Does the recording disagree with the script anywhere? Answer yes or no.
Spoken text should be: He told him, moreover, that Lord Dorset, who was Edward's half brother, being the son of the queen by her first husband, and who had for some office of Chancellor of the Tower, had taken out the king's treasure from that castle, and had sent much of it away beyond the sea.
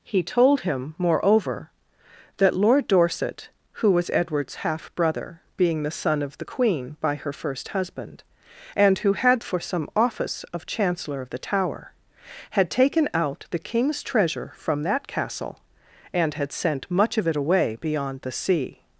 no